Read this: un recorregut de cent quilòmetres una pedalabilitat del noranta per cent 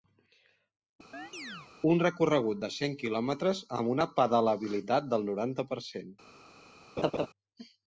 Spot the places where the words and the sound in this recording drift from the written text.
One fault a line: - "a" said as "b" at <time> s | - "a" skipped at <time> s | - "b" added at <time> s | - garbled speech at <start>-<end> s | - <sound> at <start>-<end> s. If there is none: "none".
- chirp at 1.1-1.7 s
- "amb" added at 3.8 s
- laugh at 7.0-7.3 s